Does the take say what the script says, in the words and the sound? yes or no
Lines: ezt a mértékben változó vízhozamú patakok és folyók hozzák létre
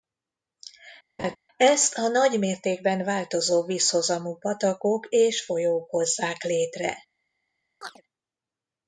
no